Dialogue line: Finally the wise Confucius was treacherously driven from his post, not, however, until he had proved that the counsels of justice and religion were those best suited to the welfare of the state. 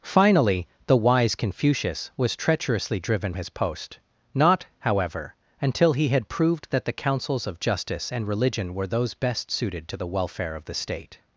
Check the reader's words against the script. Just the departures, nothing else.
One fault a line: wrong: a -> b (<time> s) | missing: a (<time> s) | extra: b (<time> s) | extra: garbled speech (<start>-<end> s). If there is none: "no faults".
missing: from (3.3 s)